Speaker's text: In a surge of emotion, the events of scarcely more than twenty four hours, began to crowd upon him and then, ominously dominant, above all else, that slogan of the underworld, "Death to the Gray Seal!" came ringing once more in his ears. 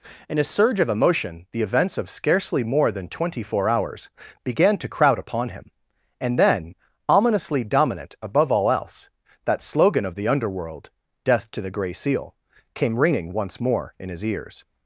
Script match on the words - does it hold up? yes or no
yes